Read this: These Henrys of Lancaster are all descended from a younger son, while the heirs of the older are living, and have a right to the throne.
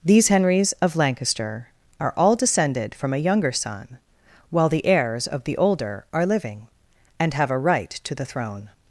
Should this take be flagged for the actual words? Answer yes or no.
no